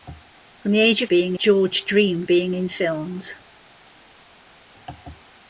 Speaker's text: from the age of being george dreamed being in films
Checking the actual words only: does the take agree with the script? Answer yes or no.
yes